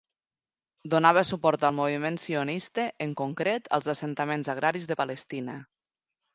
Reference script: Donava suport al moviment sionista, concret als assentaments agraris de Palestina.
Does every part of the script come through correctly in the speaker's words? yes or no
no